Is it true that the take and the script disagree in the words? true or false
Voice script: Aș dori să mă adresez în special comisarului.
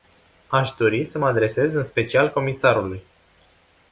false